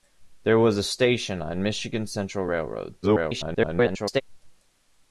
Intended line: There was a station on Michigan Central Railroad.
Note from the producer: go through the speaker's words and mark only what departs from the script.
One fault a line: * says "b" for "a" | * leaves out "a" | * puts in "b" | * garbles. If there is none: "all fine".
* garbles